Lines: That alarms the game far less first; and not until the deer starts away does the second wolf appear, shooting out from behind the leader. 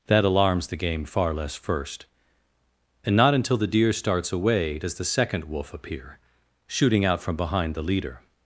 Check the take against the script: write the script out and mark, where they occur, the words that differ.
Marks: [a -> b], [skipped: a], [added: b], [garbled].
That alarms the game far less first; and not until the deer starts away does the second wolf appear, shooting out from behind the leader.